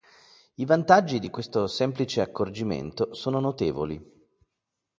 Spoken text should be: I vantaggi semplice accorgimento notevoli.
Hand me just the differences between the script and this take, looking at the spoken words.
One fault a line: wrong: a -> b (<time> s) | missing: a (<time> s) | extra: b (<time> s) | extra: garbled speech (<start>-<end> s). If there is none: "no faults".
extra: di questo (1.2 s)
extra: sono (3.1 s)